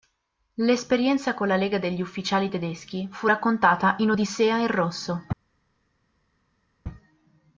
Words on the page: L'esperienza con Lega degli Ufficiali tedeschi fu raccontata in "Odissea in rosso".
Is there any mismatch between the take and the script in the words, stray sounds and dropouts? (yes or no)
yes